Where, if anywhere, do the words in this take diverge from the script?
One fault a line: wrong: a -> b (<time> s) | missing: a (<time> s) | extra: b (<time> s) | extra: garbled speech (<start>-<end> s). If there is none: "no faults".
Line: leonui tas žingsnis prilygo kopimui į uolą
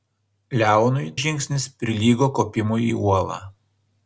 missing: tas (1.0 s)